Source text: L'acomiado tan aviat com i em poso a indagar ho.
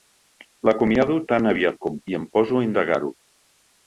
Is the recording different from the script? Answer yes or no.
no